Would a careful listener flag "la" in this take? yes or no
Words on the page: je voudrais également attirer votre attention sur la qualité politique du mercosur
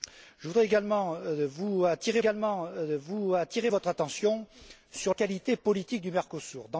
yes